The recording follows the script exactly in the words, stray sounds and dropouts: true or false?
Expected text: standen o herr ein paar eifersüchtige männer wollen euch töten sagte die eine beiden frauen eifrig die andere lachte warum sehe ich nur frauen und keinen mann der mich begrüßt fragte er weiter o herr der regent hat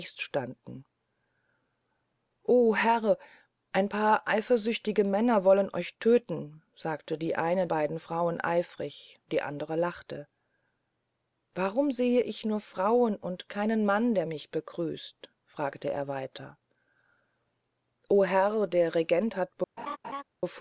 false